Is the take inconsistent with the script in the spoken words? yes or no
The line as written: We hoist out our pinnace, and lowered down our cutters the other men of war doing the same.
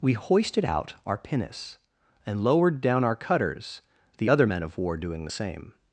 yes